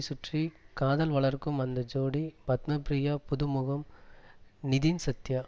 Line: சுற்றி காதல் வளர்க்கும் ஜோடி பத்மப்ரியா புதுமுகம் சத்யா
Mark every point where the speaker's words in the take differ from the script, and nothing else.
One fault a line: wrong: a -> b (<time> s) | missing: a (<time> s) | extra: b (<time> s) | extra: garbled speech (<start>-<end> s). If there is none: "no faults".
extra: அந்த (1.6 s)
extra: நிதின் (4.6 s)